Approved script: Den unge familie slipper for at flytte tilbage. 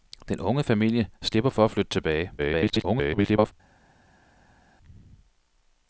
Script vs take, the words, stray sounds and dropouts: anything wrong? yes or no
yes